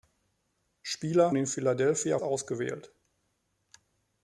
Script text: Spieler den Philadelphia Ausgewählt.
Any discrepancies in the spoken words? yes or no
no